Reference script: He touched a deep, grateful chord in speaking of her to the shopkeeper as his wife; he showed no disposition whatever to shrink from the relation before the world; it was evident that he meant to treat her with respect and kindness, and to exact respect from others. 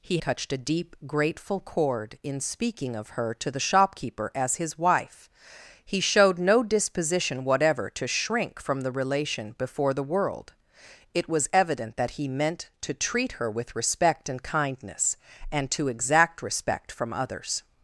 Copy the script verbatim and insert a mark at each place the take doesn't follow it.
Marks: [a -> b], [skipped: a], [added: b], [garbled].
He touched a deep, grateful chord in speaking of her to the shopkeeper as his wife; he showed no disposition whatever to shrink from the relation before the world; it was evident that he meant to treat her with respect and kindness, and to exact respect from others.